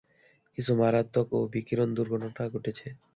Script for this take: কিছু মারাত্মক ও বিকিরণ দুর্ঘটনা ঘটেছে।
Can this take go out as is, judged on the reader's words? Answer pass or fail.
pass